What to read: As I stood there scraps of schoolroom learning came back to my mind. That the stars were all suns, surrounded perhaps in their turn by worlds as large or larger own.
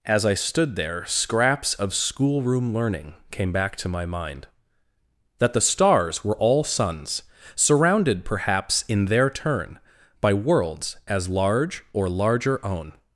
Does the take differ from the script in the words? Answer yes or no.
no